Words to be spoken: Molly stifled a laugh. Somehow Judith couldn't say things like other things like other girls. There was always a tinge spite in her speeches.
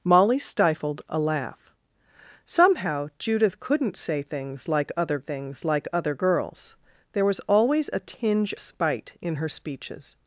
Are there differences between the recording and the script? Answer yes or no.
no